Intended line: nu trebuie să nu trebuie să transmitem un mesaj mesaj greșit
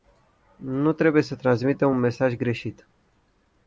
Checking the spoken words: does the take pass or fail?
fail